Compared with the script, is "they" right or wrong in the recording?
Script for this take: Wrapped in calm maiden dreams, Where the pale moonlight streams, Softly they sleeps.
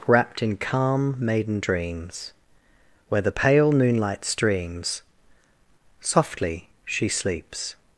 wrong